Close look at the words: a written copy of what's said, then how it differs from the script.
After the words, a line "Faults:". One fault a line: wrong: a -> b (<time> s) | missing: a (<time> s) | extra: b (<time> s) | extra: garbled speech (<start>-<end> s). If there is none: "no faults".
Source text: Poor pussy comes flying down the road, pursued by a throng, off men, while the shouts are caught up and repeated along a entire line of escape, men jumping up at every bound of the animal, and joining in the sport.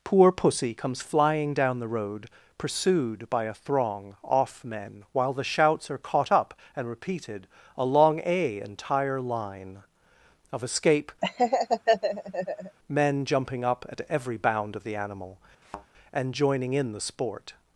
Poor pussy comes flying down the road, pursued by a throng, off men, while the shouts are caught up and repeated along a entire line of escape, men jumping up at every bound of the animal, and joining in the sport.
Faults:
no faults